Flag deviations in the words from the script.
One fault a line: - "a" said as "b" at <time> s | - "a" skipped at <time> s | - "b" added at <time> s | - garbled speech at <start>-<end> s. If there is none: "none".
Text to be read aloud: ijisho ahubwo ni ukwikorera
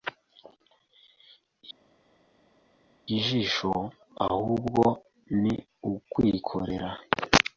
none